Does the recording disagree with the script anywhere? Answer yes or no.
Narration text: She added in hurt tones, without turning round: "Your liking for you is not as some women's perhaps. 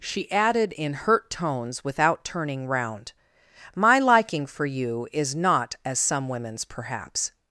yes